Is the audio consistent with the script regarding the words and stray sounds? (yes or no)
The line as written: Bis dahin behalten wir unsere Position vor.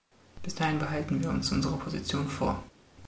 no